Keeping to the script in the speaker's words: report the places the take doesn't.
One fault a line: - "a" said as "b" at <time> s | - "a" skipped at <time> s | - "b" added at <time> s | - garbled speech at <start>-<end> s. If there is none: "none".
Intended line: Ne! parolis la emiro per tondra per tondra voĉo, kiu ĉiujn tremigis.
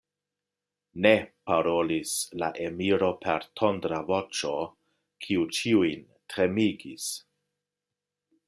- "per tondra" skipped at 4.0 s